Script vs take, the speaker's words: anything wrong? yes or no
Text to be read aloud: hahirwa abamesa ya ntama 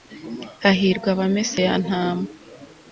no